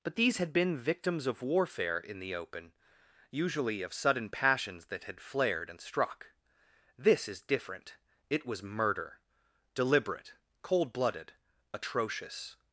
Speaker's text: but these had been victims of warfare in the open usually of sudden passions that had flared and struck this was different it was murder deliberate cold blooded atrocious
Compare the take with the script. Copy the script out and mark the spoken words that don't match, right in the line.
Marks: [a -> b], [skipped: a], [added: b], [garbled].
but these had been victims of warfare in the open usually of sudden passions that had flared and struck this [was -> is] different it was murder deliberate cold blooded atrocious